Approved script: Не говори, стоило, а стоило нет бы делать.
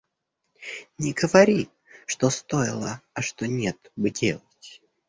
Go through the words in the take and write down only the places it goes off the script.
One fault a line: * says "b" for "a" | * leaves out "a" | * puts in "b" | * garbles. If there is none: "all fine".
* puts in "что"
* says "что" for "стоило"